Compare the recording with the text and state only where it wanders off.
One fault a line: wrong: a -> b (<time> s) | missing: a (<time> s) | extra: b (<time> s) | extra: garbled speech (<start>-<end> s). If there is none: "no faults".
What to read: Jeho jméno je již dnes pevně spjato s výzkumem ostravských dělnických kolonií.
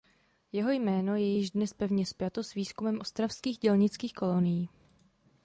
no faults